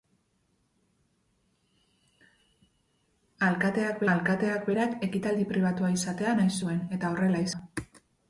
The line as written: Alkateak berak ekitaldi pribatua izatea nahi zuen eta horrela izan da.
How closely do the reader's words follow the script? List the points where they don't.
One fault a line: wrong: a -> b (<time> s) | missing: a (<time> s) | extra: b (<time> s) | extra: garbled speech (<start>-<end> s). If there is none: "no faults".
extra: alkateak (4.2 s)
missing: izan (7.5 s)